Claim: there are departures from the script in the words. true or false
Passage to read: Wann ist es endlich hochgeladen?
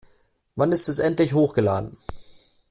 false